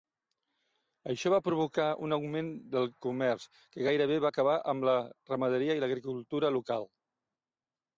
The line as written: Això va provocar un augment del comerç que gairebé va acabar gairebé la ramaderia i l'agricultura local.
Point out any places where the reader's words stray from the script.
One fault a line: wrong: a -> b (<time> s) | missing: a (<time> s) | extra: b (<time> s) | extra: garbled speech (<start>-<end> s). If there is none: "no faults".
wrong: gairebé -> amb (4.8 s)